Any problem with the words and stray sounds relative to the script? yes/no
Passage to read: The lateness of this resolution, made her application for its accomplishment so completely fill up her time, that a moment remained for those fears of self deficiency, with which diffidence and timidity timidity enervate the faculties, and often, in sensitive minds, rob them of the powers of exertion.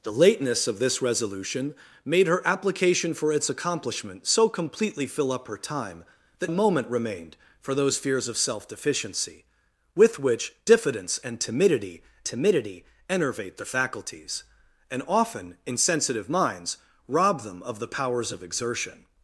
no